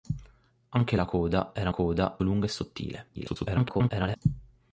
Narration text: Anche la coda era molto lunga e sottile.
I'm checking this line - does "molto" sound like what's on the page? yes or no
no